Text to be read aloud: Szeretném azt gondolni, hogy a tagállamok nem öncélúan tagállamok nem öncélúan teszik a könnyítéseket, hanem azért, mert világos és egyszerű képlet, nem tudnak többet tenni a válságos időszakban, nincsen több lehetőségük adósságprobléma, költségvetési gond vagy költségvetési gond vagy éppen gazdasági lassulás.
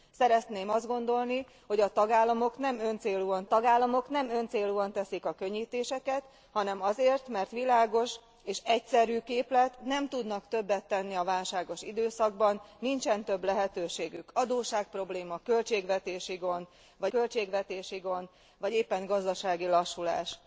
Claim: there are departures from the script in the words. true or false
false